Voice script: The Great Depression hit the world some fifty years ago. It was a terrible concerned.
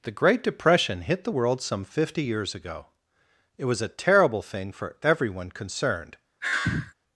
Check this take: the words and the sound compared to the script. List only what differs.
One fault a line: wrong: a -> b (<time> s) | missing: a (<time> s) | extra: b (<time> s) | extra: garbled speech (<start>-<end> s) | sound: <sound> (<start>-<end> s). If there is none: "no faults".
extra: thing for everyone (4.4 s)
sound: sigh (6.4-6.9 s)